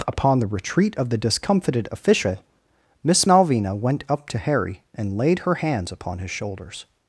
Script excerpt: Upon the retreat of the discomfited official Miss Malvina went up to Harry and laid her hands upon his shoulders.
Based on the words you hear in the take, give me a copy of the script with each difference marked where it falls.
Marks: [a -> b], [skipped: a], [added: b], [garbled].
Upon the retreat of the discomfited official Miss Malvina went up to Harry and laid her hands upon his shoulders.